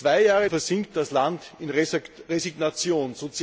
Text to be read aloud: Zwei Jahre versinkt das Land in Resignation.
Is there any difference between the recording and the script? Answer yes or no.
no